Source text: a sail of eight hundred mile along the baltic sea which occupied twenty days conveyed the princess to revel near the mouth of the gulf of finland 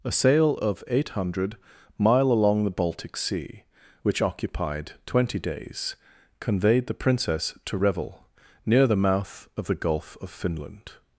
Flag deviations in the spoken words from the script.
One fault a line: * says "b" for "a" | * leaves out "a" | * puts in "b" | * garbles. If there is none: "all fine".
all fine